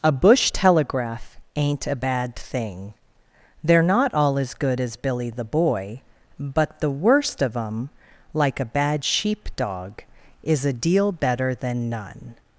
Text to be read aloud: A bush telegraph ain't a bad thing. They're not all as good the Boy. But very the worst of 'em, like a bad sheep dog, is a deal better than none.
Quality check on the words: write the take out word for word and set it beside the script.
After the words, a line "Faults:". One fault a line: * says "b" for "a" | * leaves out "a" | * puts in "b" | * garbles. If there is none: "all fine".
A bush telegraph ain't a bad thing. They're not all as good as Billy the Boy. But the worst of 'em, like a bad sheep dog, is a deal better than none.
Faults:
* puts in "as Billy"
* leaves out "very"